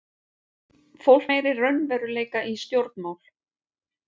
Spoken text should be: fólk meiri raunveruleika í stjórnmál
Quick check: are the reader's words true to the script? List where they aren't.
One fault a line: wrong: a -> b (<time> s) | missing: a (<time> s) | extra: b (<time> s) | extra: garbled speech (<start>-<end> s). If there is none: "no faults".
no faults